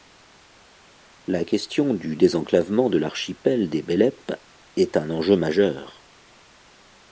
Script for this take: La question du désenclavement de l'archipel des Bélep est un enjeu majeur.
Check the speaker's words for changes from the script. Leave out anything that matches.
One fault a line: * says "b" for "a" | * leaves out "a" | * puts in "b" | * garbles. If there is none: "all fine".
all fine